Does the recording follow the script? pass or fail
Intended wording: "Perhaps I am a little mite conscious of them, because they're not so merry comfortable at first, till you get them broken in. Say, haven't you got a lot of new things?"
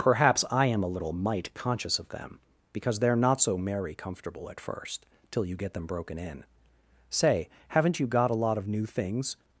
pass